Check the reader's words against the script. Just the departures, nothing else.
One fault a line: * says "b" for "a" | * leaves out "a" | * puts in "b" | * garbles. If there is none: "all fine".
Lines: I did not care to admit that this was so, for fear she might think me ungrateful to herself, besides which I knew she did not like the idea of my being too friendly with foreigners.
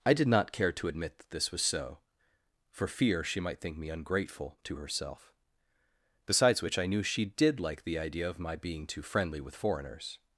* leaves out "not"